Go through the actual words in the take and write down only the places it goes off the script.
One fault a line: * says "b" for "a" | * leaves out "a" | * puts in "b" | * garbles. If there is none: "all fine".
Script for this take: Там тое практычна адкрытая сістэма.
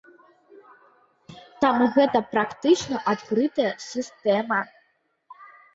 * says "гэта" for "тое"